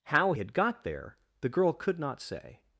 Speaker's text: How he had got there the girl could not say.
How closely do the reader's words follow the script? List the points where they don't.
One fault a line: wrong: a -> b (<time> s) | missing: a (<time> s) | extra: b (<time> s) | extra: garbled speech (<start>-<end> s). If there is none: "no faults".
missing: he (0.3 s)